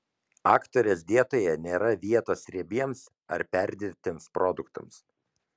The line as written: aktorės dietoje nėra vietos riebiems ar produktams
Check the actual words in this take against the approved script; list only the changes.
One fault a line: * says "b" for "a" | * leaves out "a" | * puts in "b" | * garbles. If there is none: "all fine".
* puts in "perdirbtiems"